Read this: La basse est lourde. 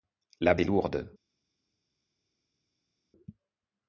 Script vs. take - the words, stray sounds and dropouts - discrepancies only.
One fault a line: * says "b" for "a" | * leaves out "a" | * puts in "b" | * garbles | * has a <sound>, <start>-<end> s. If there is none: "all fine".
* leaves out "basse"